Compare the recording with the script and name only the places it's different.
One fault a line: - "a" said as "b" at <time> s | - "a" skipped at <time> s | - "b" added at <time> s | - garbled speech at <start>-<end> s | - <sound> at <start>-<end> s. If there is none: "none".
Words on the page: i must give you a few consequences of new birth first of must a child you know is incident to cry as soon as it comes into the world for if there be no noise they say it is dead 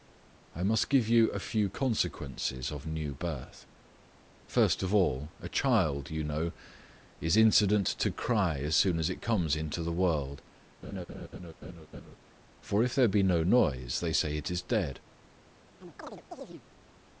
- "must" said as "all" at 5.0 s
- laugh at 10.8-12.2 s
- chirp at 15.8-16.6 s